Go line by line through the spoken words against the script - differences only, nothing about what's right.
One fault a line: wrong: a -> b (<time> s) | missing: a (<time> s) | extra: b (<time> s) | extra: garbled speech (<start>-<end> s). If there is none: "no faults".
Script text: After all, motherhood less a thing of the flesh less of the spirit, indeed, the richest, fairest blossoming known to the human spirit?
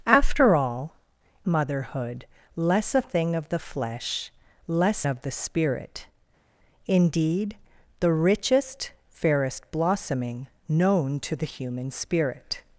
no faults